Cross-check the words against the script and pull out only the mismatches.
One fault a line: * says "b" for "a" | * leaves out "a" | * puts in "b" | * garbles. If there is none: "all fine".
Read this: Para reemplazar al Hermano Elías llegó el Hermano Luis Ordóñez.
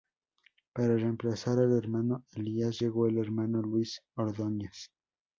all fine